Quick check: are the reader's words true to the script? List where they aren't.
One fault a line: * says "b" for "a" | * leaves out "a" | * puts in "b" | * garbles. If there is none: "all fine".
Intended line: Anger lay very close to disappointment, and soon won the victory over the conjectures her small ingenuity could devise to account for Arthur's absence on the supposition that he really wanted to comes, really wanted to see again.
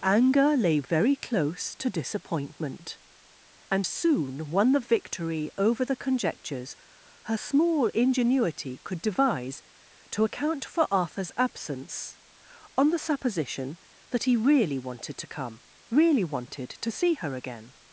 * says "come" for "comes"
* puts in "her"